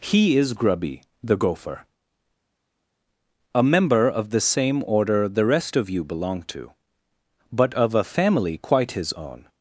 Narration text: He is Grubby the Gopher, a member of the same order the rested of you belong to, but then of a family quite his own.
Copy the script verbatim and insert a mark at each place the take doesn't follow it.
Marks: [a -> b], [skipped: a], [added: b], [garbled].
He is Grubby the Gopher, a member of the same order the [rested -> rest] of you belong to, but [skipped: then] of a family quite his own.